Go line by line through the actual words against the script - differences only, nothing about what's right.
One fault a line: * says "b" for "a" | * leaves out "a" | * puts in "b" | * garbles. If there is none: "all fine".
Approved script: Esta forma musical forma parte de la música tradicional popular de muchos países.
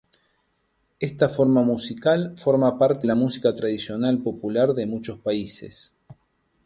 * leaves out "de"